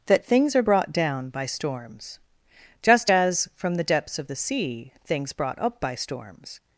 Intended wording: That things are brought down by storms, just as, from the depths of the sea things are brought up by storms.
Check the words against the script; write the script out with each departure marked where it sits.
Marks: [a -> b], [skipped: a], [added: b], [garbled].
That things are brought down by storms, just as, from the depths of the sea things [skipped: are] brought up by storms.